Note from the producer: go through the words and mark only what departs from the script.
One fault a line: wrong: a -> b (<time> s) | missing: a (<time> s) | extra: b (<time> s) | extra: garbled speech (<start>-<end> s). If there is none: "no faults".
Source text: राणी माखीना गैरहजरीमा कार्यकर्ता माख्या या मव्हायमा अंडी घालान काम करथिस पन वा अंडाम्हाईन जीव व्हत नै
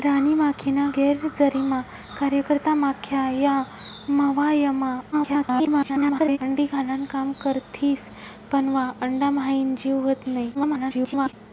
extra: garbled speech (5.1-6.4 s)
extra: garbled speech (10.5-11.3 s)